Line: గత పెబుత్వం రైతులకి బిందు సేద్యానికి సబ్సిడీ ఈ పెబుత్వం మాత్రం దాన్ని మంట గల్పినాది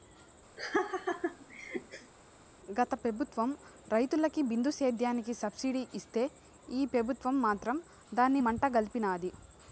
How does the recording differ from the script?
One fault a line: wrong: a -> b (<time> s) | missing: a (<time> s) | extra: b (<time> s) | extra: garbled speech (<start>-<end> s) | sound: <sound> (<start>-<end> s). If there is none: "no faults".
sound: laugh (0.6-2.1 s)
extra: ఇస్తే (5.9 s)